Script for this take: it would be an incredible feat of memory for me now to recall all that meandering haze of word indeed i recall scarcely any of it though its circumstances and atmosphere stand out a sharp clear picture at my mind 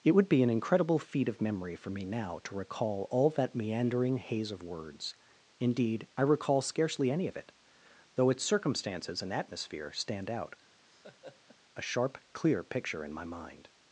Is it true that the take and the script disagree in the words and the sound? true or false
true